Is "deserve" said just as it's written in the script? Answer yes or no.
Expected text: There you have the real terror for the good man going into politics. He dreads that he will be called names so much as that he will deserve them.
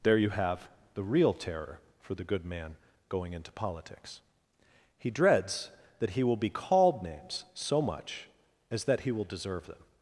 yes